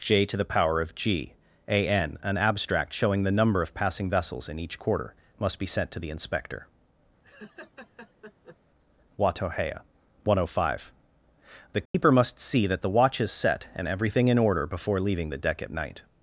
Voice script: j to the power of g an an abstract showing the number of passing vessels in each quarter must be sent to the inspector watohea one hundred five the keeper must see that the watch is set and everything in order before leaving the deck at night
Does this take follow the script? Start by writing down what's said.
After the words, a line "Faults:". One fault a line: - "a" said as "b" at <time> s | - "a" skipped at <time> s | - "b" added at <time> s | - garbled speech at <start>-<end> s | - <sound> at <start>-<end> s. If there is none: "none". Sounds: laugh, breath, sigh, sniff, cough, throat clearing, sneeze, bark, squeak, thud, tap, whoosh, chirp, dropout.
j to the power of g an an abstract showing the number of passing vessels in each quarter must be sent to the inspector watohea one hundred five the keeper must see that the watch is set and everything in order before leaving the deck at night
Faults:
- laugh at 7.2-8.6 s
- dropout at 11.9-11.9 s